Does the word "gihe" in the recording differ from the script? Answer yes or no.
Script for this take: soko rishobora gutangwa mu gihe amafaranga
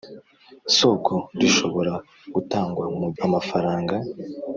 yes